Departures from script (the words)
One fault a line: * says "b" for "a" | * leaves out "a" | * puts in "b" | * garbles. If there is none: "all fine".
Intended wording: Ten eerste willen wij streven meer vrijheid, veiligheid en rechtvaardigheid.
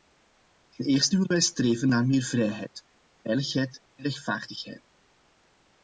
* puts in "naar"